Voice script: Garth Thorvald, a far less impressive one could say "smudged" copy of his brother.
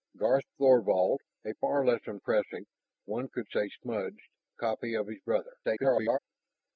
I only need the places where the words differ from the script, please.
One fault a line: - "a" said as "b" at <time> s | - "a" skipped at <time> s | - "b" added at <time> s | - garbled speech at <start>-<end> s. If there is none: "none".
- garbled speech at 5.6-6.2 s